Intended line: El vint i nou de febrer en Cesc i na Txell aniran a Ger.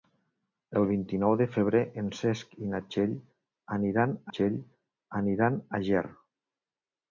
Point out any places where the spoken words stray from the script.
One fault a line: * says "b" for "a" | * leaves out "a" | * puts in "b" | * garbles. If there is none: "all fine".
* puts in "Txell aniran"